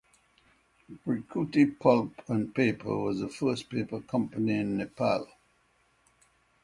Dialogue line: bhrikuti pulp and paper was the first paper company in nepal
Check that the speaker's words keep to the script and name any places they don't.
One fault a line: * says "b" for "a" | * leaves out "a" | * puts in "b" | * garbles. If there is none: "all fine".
all fine